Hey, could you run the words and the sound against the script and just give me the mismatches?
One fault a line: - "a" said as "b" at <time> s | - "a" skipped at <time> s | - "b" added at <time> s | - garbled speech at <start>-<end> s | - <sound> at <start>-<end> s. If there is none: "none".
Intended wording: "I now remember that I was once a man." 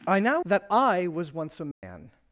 - "remember" skipped at 0.4 s
- dropout at 1.7-1.8 s